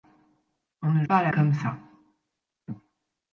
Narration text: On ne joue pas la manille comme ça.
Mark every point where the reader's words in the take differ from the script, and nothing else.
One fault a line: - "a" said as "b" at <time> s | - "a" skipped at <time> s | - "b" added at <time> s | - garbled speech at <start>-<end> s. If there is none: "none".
- "joue" skipped at 1.1 s
- "manille" skipped at 1.3 s